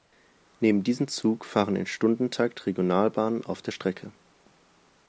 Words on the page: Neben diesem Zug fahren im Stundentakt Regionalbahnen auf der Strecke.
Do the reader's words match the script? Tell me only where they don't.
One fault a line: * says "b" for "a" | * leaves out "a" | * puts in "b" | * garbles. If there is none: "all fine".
all fine